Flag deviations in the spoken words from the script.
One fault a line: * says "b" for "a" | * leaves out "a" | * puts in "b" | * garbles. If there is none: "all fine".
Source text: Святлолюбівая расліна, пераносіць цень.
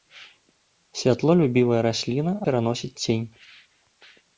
all fine